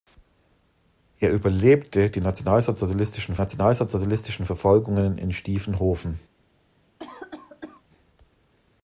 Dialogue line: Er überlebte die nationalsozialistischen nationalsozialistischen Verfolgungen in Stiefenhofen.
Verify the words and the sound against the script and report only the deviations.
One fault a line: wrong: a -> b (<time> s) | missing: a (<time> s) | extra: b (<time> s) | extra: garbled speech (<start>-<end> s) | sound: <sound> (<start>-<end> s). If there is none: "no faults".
sound: cough (7.0-7.8 s)